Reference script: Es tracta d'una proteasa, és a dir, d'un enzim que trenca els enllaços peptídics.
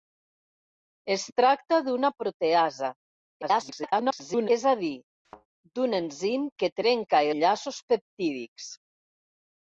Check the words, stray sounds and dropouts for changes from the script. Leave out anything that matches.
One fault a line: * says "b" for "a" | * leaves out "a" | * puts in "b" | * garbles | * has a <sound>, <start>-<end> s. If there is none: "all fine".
* garbles
* has a thud, 5.2-5.5 s
* leaves out "els"